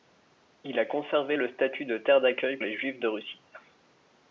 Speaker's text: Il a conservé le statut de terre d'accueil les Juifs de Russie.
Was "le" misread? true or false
false